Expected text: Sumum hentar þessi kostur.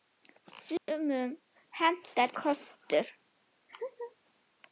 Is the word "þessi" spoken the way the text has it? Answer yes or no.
no